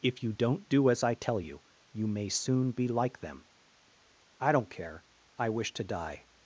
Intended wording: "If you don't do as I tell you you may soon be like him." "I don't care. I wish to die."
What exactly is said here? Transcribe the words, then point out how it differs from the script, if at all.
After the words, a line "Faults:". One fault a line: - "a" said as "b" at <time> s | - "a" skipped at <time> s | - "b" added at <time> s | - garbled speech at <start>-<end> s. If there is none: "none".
"If you don't do as I tell you you may soon be like them." "I don't care. I wish to die."
Faults:
- "him" said as "them" at 3.2 s